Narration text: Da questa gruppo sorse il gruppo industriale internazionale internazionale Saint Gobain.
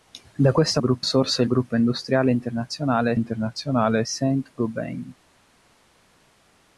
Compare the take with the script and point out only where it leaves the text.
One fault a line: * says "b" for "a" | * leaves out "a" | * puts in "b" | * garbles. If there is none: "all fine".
all fine